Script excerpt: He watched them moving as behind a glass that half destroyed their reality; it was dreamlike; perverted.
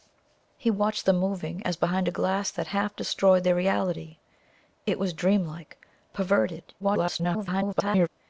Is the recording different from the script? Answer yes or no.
yes